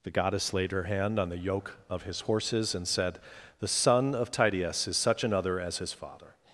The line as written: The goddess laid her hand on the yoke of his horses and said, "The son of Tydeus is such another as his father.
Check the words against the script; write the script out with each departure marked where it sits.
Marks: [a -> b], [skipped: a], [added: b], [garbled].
The goddess laid her hand on the yoke of his horses and said, "The son of Tydeus is such another as his father.